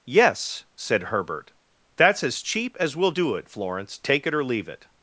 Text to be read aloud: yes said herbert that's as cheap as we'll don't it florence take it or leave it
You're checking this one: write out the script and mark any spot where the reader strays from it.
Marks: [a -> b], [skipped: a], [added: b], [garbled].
yes said herbert that's as cheap as we'll [don't -> do] it florence take it or leave it